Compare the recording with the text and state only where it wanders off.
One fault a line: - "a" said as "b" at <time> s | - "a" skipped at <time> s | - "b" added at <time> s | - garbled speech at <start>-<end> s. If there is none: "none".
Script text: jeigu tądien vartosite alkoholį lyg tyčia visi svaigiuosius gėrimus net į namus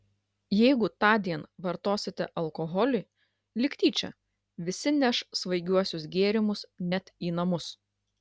- "neš" added at 5.0 s